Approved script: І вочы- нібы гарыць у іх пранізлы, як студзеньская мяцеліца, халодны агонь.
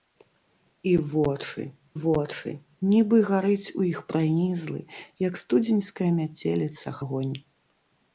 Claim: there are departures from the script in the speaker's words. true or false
true